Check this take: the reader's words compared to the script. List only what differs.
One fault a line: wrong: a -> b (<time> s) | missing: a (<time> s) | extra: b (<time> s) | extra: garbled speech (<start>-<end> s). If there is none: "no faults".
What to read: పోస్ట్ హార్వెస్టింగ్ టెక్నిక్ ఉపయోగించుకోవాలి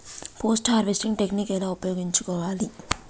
extra: ఎలా (1.5 s)